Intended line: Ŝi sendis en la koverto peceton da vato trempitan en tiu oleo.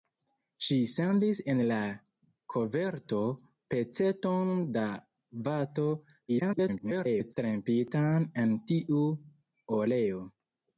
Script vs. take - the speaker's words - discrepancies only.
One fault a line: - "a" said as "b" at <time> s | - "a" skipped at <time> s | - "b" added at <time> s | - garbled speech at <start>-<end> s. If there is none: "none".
- garbled speech at 6.3-7.3 s